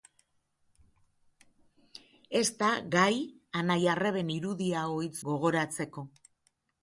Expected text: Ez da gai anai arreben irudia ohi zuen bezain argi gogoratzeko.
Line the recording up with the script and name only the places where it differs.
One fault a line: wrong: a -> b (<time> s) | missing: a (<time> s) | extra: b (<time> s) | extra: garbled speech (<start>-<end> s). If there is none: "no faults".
missing: zuen bezain argi (5.1 s)